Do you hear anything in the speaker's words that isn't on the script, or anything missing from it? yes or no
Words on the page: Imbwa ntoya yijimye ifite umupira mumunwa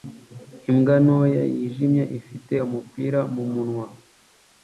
no